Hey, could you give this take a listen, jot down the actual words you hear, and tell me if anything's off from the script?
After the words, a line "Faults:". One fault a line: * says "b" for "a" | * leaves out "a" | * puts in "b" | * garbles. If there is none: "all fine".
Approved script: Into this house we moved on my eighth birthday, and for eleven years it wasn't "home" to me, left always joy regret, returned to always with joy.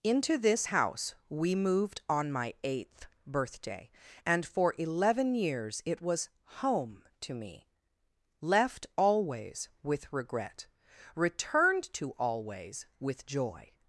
Into this house we moved on my eighth birthday, and for eleven years it was "home" to me, left always with regret, returned to always with joy.
Faults:
* says "was" for "wasn't"
* says "with" for "joy"